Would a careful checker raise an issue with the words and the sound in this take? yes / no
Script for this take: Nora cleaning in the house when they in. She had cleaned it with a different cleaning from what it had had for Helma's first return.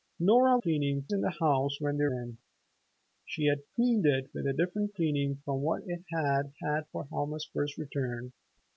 no